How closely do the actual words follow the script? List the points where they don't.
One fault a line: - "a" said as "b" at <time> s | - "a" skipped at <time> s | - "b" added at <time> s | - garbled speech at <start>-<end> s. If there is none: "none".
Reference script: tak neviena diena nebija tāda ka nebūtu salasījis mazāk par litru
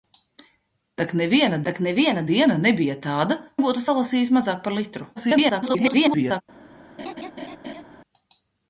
- "tak neviena" added at 1.7 s
- "ka" skipped at 3.4 s
- garbled speech at 5.2-6.4 s